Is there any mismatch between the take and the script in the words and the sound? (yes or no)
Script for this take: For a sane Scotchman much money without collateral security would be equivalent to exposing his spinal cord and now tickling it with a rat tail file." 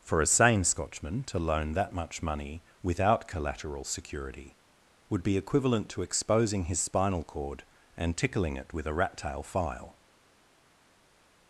yes